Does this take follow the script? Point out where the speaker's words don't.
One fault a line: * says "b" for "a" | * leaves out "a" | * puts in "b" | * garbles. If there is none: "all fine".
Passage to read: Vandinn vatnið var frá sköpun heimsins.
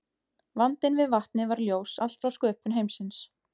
* puts in "við"
* puts in "ljós allt"